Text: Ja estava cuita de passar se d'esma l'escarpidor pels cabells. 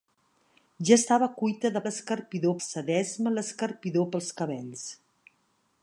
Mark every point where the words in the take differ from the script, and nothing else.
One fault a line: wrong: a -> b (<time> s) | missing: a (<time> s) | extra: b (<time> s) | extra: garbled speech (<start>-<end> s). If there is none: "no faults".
wrong: passar -> l'escarpidor (1.8 s)